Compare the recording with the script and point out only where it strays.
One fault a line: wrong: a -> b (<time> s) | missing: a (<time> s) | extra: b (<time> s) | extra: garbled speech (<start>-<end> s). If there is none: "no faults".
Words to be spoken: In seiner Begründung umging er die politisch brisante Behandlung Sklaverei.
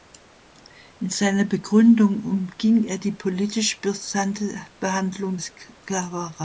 no faults